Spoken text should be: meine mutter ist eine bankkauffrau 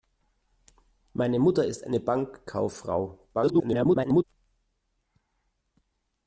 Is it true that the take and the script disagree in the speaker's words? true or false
true